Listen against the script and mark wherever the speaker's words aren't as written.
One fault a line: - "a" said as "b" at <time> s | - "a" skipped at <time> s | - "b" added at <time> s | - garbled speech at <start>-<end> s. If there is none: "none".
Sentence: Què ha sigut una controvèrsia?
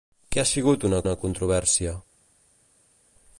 - "una" added at 1.0 s